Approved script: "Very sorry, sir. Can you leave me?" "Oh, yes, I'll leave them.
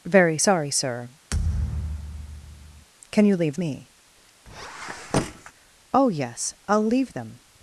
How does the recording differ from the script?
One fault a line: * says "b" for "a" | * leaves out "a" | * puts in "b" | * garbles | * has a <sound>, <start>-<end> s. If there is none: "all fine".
* has a thud, 1.3-2.9 s
* has a squeak, 4.5-5.5 s